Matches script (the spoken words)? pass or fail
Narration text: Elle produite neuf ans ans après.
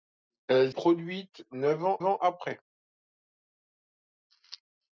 pass